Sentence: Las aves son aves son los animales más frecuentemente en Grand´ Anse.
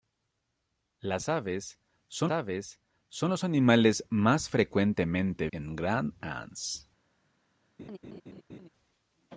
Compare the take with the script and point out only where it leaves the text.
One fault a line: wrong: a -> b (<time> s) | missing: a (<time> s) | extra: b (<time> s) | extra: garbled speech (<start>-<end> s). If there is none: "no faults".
no faults